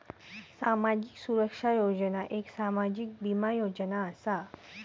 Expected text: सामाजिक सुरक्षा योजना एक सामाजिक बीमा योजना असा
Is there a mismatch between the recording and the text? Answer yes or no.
no